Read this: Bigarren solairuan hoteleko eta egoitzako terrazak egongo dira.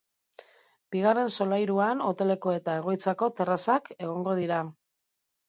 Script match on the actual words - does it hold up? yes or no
yes